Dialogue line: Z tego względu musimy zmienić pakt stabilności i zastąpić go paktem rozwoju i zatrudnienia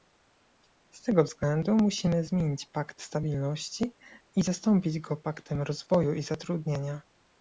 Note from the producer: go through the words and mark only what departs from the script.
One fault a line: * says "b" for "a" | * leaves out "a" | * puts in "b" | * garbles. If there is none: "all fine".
all fine